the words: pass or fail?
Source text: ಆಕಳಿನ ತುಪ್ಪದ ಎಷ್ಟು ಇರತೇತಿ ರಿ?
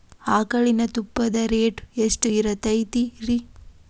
fail